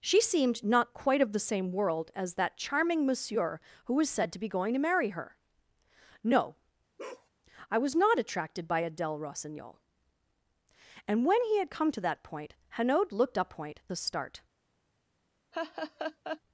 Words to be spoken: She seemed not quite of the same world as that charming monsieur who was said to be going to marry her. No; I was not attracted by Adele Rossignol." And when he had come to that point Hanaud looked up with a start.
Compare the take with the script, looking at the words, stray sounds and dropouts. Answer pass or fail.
fail